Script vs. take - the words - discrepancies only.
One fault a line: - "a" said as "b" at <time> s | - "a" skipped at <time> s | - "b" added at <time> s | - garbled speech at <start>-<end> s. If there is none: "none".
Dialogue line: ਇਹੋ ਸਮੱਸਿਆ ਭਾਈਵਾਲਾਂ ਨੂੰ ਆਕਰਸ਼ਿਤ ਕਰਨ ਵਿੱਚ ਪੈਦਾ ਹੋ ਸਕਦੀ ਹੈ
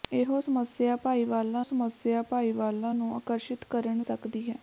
- "ਸਮੱਸਿਆ ਭਾਈਵਾਲਾਂ" added at 1.6 s
- "ਵਿੱਚ ਪੈਦਾ ਹੋ" skipped at 4.0 s